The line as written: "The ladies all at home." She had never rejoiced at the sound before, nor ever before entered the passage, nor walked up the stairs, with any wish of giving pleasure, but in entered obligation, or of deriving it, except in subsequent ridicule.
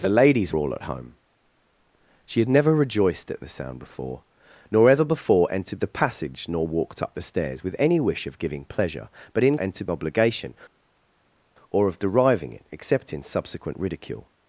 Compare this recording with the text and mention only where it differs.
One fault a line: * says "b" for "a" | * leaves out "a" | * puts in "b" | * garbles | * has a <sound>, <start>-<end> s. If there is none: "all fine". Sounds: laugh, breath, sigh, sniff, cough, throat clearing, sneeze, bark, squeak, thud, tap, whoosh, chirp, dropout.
all fine